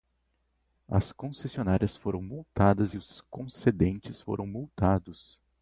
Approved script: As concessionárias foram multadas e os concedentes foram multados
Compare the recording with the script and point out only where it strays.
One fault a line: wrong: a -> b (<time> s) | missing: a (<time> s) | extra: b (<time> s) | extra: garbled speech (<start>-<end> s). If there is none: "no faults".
no faults